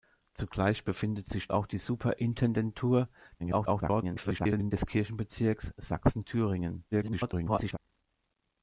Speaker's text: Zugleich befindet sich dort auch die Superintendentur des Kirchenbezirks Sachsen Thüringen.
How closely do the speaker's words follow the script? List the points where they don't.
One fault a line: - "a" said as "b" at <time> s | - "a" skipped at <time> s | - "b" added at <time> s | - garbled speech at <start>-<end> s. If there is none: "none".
- "dort" skipped at 1.5 s
- garbled speech at 3.4-4.7 s
- garbled speech at 6.9-7.8 s